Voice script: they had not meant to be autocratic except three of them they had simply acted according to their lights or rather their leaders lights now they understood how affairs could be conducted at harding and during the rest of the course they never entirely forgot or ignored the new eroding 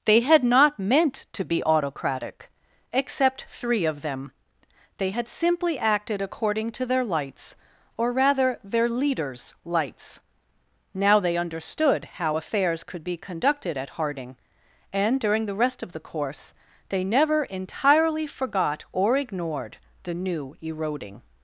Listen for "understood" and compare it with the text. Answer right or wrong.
right